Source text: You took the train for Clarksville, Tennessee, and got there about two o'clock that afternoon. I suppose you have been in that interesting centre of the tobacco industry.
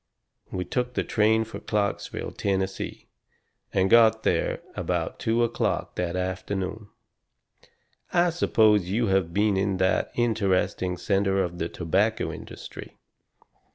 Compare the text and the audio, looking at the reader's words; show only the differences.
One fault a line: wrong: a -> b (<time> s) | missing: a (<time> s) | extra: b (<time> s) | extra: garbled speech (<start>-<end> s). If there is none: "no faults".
wrong: You -> We (0.5 s)